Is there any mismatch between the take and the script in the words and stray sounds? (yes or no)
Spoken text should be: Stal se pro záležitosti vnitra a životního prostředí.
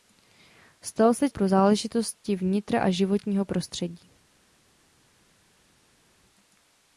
no